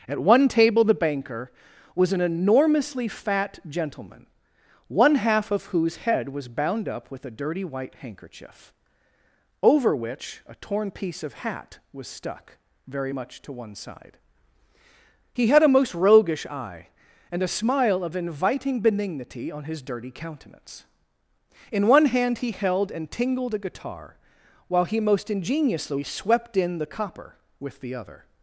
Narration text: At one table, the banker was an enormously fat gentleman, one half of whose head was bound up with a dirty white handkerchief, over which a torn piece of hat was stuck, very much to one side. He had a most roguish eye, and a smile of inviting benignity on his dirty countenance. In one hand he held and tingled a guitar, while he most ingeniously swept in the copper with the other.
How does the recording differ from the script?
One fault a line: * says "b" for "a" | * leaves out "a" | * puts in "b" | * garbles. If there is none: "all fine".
all fine